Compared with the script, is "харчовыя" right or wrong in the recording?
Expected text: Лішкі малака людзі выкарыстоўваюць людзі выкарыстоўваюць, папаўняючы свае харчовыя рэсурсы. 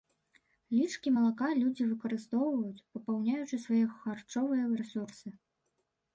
right